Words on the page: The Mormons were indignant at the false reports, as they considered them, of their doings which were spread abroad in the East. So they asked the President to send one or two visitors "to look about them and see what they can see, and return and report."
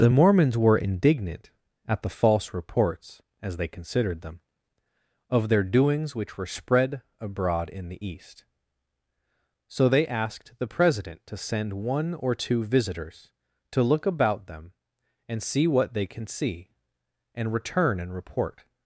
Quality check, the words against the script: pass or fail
pass